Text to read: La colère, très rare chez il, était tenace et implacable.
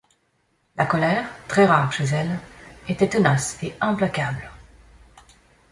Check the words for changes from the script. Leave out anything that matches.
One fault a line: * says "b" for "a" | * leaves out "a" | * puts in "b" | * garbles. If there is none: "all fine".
* says "elle" for "il"